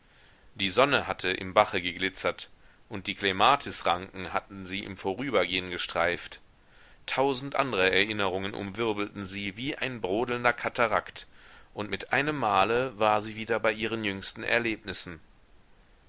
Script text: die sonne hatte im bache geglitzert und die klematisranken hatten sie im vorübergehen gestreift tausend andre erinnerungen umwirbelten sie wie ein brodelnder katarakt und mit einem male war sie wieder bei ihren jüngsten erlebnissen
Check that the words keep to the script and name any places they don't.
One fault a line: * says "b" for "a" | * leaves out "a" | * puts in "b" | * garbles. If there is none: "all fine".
all fine